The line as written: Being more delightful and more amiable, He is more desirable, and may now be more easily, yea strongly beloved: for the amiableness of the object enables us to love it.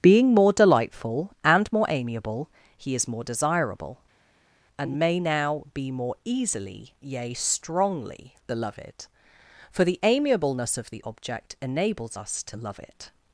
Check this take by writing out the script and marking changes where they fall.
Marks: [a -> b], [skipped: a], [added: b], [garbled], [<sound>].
Being more delightful and more amiable, He is more desirable, and may now be more easily, yea strongly beloved: for the amiableness of the object enables us to love it.